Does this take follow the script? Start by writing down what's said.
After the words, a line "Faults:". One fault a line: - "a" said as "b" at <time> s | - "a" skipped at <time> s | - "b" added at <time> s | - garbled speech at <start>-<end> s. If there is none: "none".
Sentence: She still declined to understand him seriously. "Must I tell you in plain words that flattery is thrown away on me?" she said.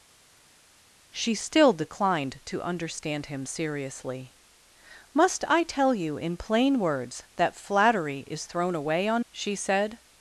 She still declined to understand him seriously. "Must I tell you in plain words that flattery is thrown away on?" she said.
Faults:
- "me" skipped at 9.3 s